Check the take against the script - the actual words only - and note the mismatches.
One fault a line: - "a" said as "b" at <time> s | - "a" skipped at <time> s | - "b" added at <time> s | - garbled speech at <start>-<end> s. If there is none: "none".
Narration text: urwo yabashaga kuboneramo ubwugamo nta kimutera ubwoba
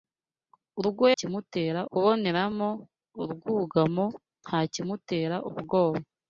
- "yabashaga" said as "kimutera" at 1.2 s